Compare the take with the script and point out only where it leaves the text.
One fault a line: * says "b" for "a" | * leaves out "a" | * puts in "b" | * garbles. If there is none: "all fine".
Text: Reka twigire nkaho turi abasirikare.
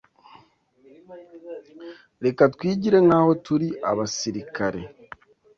all fine